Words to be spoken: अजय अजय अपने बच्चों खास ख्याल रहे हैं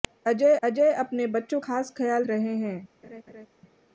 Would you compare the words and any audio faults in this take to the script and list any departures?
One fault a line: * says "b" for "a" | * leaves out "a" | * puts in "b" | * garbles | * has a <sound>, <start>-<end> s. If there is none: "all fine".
* has a laugh, 3.0-3.5 s